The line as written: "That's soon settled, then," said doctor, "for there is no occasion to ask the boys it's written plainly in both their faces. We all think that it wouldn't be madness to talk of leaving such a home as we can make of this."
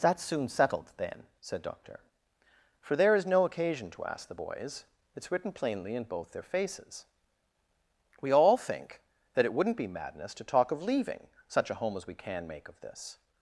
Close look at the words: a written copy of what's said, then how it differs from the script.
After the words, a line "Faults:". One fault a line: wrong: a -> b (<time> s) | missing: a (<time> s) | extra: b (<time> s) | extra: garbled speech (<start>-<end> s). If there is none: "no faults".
"That's soon settled, then," said doctor, "for there is no occasion to ask the boys it's written plainly in both their faces. We all think that it wouldn't be madness to talk of leaving such a home as we can make of this."
Faults:
no faults